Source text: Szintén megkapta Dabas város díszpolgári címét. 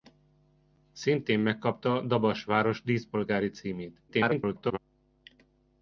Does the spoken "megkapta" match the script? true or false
true